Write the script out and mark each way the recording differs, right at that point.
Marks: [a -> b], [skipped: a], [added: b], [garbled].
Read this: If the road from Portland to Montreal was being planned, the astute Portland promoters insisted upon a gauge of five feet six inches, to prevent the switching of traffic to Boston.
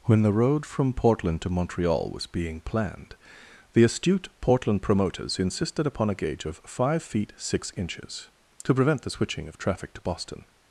[If -> When] the road from Portland to Montreal was being planned, the astute Portland promoters insisted upon a gauge of five feet six inches, to prevent the switching of traffic to Boston.